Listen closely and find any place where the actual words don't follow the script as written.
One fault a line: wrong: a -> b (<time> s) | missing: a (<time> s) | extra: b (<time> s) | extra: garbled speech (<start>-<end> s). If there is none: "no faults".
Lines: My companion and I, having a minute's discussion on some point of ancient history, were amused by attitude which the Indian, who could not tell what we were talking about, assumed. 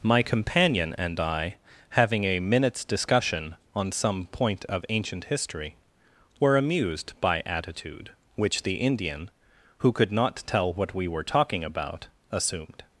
no faults